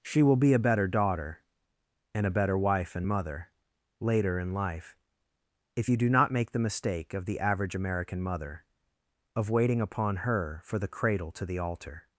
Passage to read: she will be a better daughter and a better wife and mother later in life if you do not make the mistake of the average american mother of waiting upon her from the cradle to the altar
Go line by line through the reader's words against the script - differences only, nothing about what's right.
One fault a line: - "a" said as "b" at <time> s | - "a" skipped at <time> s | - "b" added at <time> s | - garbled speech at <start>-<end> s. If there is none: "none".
- "from" said as "for" at 10.6 s